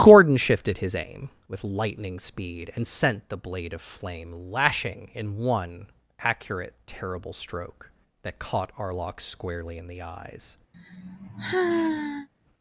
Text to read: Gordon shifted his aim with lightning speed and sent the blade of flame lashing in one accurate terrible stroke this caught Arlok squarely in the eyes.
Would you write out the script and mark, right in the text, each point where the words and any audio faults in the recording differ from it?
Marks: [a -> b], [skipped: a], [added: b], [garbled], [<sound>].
Gordon shifted his aim with lightning speed and sent the blade of flame lashing in one accurate terrible stroke [this -> that] caught Arlok squarely in the eyes. [sigh]